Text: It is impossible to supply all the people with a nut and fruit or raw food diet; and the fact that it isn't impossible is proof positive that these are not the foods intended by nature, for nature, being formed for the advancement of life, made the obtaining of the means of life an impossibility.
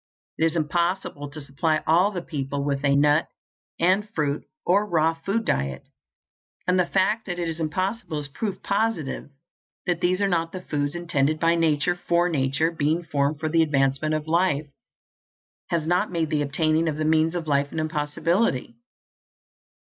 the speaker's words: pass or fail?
fail